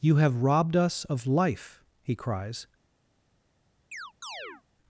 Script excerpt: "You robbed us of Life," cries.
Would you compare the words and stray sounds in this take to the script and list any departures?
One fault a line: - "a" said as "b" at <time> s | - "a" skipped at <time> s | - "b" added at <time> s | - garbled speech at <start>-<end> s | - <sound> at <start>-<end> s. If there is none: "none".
- "have" added at 0.1 s
- "he" added at 2.0 s
- chirp at 3.9-4.6 s